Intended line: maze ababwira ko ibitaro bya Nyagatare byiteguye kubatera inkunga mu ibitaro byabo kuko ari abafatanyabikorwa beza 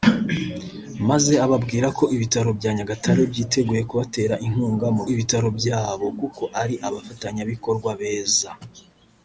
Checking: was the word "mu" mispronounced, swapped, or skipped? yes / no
no